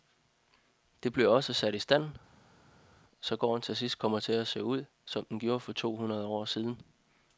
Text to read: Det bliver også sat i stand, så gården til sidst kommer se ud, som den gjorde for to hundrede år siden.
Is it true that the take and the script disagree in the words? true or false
true